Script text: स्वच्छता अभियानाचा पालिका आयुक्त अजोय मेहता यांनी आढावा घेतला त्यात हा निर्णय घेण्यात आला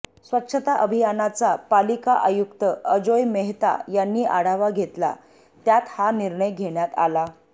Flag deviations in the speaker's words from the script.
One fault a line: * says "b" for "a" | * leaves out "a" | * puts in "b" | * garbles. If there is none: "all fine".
all fine